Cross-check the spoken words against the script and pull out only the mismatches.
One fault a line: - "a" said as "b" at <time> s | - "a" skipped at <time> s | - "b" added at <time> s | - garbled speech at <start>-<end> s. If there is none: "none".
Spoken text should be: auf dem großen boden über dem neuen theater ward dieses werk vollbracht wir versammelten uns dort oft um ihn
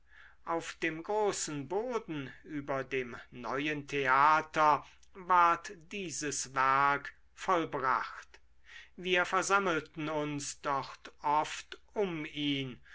none